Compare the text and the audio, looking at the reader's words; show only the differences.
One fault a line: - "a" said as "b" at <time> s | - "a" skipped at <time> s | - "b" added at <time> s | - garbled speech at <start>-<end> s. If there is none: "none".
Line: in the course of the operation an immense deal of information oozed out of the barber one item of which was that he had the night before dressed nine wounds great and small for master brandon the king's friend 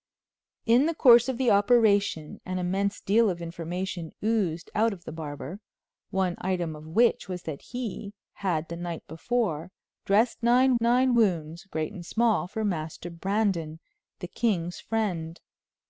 - "nine" added at 10.8 s